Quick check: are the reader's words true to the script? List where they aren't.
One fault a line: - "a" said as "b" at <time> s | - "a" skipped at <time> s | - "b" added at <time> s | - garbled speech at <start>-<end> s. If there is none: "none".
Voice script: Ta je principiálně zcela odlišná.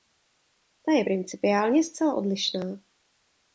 none